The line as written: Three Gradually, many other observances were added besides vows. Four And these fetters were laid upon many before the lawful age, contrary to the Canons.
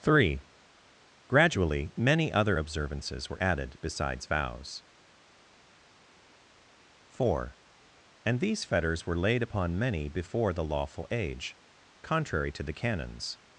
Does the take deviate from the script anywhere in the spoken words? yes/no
no